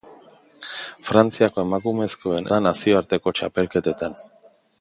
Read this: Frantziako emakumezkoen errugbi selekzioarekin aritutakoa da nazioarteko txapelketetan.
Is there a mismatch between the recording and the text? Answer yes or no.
yes